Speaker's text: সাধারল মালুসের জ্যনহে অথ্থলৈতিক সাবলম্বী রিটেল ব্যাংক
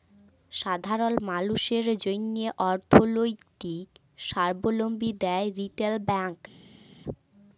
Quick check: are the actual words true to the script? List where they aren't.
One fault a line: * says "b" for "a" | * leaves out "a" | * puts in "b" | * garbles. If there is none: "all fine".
* puts in "দেয়"